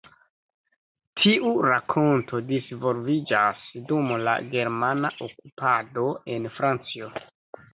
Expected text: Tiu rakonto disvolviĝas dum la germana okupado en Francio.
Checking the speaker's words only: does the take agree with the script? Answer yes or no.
yes